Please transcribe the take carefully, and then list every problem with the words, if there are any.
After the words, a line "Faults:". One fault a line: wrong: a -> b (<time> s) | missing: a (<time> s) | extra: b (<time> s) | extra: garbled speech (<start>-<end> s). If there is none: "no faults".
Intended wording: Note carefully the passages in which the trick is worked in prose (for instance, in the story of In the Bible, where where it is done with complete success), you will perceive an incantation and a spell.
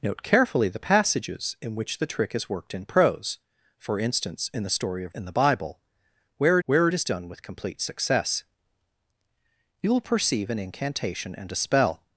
Note carefully the passages in which the trick is worked in prose (for instance, in the story of In the Bible, where where it is done with complete success), you will perceive an incantation and a spell.
Faults:
no faults